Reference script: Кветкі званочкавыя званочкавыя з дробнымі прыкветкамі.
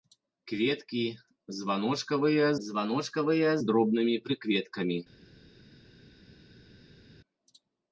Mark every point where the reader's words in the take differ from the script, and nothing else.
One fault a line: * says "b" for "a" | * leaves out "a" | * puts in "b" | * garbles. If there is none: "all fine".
all fine